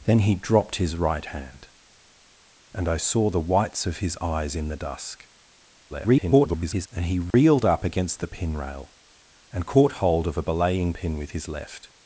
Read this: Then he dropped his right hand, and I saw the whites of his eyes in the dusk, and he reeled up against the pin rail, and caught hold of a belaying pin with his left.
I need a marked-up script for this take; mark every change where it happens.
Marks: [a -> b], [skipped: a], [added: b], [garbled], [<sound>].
Then he dropped his right hand, and I saw the whites of his eyes in the dusk, [garbled] and he reeled [dropout] up against the pin rail, and caught hold of a belaying pin with his left.